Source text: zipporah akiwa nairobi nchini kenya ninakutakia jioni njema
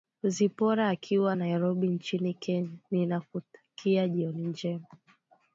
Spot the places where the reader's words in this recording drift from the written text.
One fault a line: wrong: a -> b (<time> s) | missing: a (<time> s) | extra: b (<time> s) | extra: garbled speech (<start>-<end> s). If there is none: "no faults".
no faults